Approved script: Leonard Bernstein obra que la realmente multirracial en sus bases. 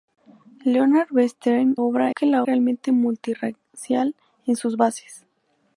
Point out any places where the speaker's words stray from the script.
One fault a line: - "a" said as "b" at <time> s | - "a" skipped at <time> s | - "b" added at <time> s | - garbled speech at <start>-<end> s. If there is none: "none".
none